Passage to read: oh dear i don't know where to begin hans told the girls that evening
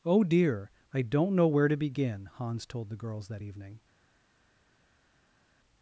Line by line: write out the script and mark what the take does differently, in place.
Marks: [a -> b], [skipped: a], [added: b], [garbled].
oh dear i don't know where to begin hans told the girls that evening